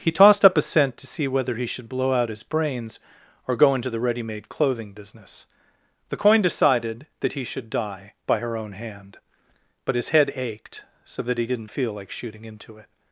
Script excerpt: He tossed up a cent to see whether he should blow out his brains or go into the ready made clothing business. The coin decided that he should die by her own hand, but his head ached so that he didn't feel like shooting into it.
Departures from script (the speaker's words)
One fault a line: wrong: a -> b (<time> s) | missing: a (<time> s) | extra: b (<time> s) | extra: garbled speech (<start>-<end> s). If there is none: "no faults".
no faults